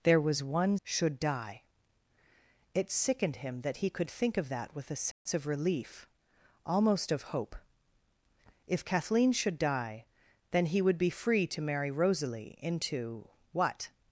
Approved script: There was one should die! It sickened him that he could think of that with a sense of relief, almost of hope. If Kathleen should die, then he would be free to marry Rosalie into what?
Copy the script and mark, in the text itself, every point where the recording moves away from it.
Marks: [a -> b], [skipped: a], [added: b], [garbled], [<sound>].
There was one should die! It sickened him that he could think of that with a sense [dropout] of relief, almost of hope. If Kathleen should die, then he would be free to marry Rosalie into what?